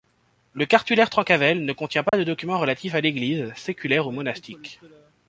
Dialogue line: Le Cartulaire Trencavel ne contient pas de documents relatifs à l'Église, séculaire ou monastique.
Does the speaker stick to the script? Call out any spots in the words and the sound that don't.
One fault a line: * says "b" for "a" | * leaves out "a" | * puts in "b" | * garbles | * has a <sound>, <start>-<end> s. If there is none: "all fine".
* has a dropout, 2.1-2.1 s